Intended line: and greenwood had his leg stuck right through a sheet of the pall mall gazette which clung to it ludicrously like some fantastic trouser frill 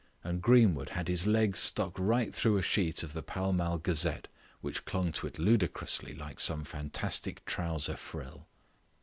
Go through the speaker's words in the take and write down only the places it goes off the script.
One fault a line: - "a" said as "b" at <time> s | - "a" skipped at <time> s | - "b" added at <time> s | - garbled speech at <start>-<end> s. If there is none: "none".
none